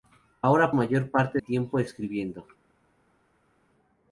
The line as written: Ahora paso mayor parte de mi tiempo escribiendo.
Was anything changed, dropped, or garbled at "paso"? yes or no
yes